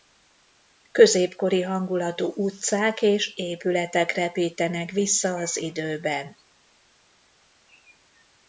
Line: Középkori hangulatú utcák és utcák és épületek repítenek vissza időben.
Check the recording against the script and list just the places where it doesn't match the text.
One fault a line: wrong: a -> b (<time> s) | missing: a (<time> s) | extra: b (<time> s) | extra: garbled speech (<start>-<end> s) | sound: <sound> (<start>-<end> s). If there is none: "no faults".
missing: utcák és (3.4 s)
extra: az (5.3 s)